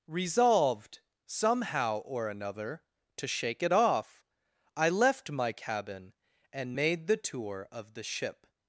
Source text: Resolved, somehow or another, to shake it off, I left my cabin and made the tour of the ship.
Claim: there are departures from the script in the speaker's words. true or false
false